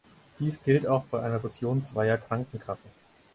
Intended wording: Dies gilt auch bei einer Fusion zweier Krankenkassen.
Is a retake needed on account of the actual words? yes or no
no